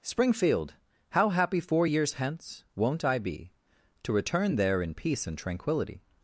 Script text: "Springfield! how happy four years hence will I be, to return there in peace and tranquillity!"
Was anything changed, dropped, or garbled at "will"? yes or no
yes